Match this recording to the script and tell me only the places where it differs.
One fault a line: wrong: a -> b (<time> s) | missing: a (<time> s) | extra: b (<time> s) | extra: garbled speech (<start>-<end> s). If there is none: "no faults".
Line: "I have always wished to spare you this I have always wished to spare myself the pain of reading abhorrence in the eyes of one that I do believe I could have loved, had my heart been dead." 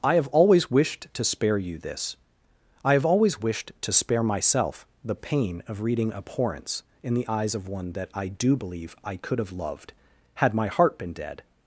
no faults